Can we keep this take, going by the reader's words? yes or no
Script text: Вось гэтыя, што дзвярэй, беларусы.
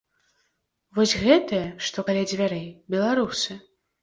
no